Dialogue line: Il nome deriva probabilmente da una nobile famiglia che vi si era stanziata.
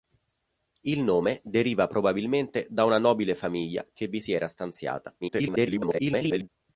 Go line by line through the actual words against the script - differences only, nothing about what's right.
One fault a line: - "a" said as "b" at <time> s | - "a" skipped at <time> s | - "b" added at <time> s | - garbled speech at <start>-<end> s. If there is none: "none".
- garbled speech at 5.2-6.5 s